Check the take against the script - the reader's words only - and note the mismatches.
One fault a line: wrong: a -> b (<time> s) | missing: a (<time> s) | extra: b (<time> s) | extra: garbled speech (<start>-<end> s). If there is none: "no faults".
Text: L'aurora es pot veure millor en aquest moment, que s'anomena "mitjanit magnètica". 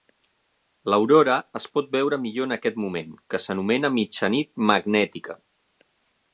no faults